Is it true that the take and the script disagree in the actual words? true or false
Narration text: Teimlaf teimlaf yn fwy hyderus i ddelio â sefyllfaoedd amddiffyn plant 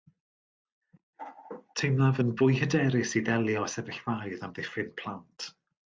true